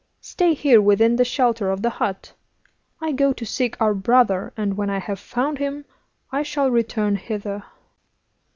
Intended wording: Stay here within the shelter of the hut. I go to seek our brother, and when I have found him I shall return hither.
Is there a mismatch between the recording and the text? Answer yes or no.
no